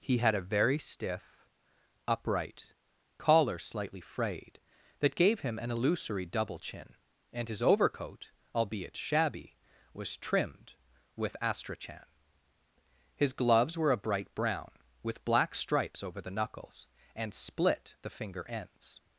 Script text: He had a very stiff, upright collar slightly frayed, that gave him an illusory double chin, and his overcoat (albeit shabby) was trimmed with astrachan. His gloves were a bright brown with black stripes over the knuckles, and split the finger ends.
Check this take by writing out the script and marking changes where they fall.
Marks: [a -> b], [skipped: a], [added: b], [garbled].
He had a very stiff, upright collar slightly frayed, that gave him an illusory double chin, and his overcoat (albeit shabby) was trimmed with astrachan. His gloves were a bright brown with black stripes over the knuckles, and split the finger ends.